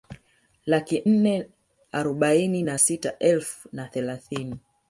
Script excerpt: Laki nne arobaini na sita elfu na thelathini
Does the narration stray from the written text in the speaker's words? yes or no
no